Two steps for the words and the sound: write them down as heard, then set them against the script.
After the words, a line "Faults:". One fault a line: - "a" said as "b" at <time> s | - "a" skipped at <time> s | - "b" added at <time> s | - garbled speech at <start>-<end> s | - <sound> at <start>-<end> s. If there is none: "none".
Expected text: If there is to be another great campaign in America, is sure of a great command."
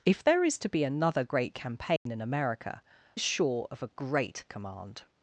If there is to be another great campaign in America, is sure of a great command."
Faults:
- dropout at 2.0-2.1 s